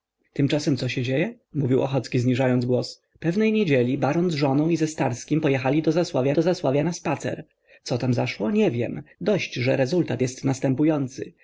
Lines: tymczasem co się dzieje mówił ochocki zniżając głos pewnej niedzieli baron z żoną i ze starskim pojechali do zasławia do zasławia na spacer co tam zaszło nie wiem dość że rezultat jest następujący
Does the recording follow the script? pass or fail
pass